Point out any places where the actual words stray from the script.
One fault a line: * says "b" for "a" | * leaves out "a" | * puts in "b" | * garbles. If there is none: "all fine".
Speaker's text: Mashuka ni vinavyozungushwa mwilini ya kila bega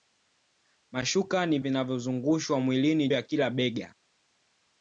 all fine